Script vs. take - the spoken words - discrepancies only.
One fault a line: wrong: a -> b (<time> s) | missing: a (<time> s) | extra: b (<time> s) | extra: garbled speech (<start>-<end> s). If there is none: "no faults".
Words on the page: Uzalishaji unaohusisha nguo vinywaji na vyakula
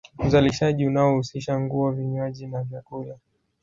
no faults